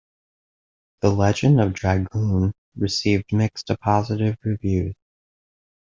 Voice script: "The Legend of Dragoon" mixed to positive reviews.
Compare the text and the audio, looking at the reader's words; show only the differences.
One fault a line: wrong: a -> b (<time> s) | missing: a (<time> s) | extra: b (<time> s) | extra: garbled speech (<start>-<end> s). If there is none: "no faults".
extra: received (2.8 s)